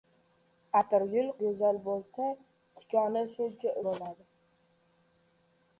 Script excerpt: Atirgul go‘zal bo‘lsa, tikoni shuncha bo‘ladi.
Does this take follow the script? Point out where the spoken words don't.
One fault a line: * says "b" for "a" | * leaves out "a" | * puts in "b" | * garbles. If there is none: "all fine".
all fine